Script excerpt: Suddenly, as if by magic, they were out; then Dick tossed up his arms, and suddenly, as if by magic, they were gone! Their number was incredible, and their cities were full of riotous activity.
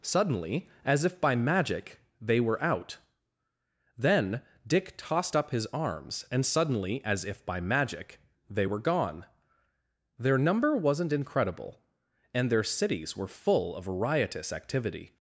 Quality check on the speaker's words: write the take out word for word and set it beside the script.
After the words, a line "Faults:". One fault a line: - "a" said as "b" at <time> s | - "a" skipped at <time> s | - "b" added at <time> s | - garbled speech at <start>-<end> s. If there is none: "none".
Suddenly, as if by magic, they were out; then Dick tossed up his arms, and suddenly, as if by magic, they were gone! Their number wasn't incredible, and their cities were full of riotous activity.
Faults:
- "was" said as "wasn't" at 10.8 s